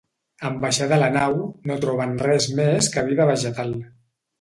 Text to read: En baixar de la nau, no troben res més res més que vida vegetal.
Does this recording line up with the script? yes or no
no